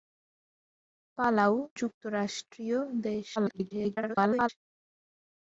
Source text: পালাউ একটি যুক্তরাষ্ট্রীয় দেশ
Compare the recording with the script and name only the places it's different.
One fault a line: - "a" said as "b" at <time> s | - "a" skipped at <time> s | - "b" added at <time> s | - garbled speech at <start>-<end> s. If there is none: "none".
- "একটি" skipped at 1.5 s
- garbled speech at 3.4-4.5 s